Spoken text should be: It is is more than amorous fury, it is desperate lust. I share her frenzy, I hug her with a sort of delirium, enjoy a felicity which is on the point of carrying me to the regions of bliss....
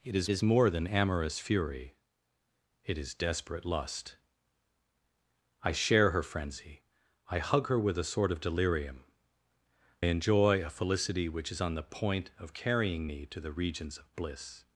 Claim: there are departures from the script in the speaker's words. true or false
false